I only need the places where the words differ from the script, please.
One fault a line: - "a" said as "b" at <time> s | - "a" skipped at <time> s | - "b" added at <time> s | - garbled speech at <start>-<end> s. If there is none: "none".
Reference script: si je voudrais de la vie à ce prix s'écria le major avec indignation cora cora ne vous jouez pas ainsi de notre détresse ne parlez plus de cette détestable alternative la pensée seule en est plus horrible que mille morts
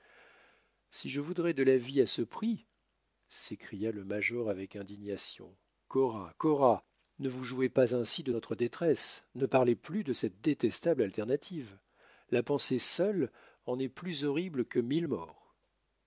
none